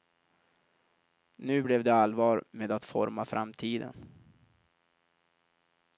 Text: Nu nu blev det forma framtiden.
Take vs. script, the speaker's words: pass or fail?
fail